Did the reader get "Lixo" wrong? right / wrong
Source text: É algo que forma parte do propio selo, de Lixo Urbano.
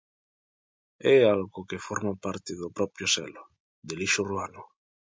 right